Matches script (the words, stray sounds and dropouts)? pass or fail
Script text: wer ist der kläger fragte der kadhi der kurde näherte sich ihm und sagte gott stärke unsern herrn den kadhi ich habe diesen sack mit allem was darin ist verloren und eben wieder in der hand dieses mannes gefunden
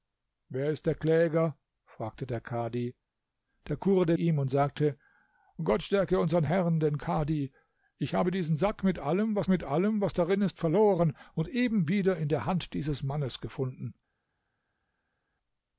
fail